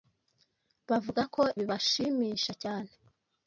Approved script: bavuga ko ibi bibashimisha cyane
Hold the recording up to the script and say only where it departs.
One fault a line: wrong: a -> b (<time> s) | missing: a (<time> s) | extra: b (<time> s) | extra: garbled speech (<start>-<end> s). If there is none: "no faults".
missing: ibi (1.4 s)